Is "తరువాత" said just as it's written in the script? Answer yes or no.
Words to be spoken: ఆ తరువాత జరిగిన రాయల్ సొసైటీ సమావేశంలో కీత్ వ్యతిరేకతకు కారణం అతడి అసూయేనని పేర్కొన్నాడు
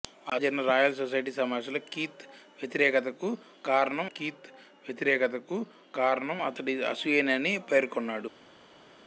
no